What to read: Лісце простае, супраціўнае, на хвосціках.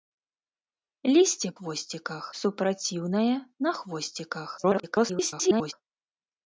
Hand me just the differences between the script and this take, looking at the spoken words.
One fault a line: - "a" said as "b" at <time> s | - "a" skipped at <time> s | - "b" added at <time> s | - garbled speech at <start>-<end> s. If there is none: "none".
- "простае" said as "хвосціках" at 1.6 s
- garbled speech at 4.6-5.7 s